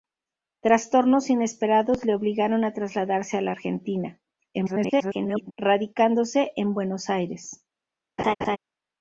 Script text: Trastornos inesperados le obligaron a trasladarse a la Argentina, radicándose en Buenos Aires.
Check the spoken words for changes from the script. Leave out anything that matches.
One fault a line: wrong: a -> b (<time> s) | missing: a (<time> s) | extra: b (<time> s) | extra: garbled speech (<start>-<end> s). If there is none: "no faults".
extra: garbled speech (4.5-5.5 s)